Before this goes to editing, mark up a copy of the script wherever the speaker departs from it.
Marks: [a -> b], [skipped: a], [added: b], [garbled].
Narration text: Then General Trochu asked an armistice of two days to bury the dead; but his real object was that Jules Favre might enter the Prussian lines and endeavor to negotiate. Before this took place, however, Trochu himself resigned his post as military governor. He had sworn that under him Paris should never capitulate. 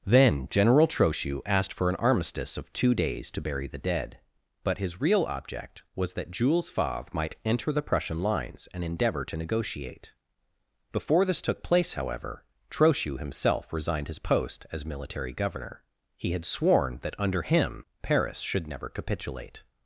Then General Trochu asked [added: for] an armistice of two days to bury the dead; but his real object was that Jules Favre might enter the Prussian lines and endeavor to negotiate. Before this took place, however, Trochu himself resigned his post as military governor. He had sworn that under him Paris should never capitulate.